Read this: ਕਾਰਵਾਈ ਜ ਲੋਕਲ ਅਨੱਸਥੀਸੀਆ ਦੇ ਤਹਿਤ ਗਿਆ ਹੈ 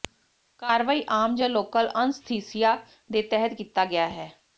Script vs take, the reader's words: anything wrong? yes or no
yes